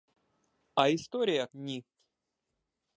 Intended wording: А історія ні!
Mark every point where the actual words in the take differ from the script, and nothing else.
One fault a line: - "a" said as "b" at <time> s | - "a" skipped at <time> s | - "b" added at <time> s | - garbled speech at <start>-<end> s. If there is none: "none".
none